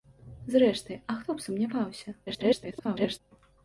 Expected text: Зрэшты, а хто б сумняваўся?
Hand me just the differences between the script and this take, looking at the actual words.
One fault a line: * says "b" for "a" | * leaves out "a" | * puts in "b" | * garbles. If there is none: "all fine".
* garbles